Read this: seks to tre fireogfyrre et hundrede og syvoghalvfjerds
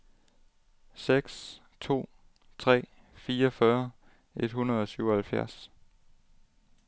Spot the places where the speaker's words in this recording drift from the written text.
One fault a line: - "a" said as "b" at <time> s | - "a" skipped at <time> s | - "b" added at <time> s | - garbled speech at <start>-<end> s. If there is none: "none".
none